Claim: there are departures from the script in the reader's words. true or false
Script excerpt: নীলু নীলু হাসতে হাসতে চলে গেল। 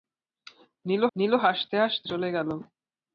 false